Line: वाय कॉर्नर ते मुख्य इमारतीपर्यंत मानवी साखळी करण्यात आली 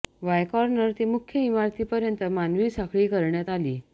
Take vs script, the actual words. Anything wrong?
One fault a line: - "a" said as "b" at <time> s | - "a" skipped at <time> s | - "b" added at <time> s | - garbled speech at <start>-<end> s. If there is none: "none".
none